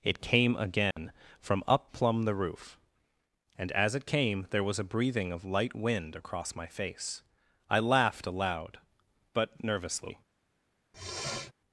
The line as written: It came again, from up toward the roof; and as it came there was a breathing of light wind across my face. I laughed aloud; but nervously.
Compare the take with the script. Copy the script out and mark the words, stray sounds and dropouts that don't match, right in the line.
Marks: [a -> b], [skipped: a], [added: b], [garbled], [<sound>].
It came again, [dropout] from up [toward -> plumb] the roof; and as it came there was a breathing of light wind across my face. I laughed aloud; but nervously. [sniff]